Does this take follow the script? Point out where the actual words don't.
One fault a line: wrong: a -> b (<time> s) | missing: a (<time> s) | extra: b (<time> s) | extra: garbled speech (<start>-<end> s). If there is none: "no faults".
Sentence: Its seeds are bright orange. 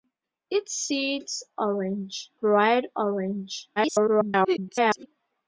wrong: are -> orange (1.6 s)
extra: garbled speech (3.8-5.1 s)